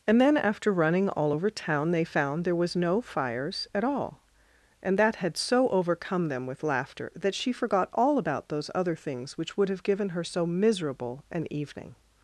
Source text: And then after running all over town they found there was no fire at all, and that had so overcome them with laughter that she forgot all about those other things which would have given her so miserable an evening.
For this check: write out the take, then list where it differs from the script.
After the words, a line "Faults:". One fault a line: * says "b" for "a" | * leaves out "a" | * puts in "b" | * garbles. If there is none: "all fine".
And then after running all over town they found there was no fires at all, and that had so overcome them with laughter that she forgot all about those other things which would have given her so miserable an evening.
Faults:
* says "fires" for "fire"